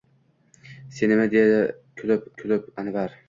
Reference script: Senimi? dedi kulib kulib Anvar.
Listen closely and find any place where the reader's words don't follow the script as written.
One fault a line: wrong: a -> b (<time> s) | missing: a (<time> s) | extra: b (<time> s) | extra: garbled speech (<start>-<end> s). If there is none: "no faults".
no faults